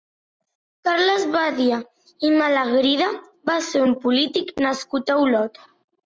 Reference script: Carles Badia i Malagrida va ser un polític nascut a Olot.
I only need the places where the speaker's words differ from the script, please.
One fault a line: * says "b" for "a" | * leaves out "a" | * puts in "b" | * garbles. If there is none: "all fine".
all fine